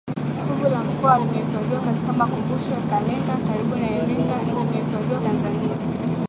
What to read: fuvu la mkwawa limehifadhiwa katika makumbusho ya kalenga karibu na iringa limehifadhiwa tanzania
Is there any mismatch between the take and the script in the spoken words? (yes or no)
no